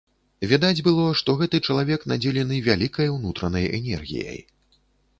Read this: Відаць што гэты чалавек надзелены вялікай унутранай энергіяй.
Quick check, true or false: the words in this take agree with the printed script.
false